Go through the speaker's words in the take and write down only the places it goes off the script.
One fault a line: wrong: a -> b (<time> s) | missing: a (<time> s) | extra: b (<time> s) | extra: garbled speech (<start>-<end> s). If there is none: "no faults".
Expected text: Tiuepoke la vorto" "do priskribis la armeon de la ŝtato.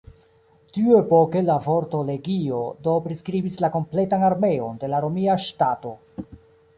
extra: legio (2.1 s)
extra: kompletan (3.8 s)
extra: romia (5.1 s)